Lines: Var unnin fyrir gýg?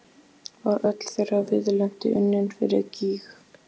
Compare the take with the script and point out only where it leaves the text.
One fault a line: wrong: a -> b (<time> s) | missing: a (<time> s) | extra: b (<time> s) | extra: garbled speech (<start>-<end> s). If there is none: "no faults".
extra: öll þeirra viðleitni (0.9 s)